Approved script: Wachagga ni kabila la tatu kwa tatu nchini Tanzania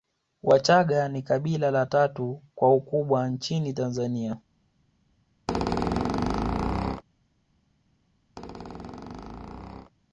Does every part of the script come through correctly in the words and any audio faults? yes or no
no